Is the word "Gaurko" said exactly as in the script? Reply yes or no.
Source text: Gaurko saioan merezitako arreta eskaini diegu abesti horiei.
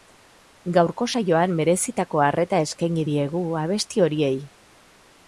yes